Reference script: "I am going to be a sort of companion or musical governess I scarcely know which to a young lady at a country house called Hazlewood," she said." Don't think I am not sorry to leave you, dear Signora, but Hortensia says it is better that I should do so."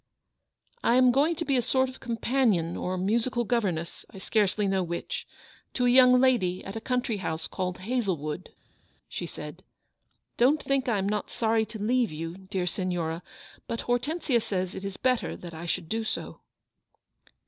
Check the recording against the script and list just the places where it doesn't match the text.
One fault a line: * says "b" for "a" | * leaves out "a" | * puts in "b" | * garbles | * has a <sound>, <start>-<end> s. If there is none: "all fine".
all fine